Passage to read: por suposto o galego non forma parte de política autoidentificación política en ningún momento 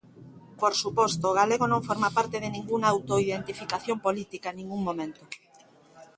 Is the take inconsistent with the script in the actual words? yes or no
yes